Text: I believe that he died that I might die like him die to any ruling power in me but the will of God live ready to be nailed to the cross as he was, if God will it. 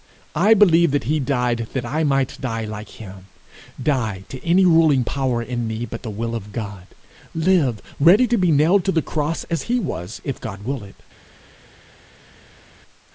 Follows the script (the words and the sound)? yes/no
yes